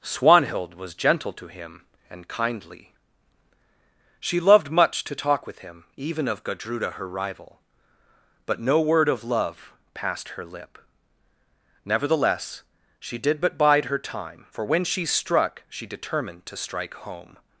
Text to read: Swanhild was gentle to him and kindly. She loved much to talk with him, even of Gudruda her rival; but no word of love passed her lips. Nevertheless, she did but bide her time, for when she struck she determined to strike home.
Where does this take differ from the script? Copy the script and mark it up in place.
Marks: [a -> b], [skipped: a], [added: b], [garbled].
Swanhild was gentle to him and kindly. She loved much to talk with him, even of Gudruda her rival; but no word of love passed her [lips. -> lip] Nevertheless, she did but bide her time, for when she struck she determined to strike home.